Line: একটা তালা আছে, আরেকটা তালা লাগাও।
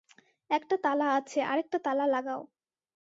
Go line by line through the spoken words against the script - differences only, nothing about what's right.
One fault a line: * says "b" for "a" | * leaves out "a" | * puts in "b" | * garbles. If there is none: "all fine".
all fine